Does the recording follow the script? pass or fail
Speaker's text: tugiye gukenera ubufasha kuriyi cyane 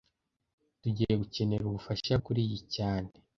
pass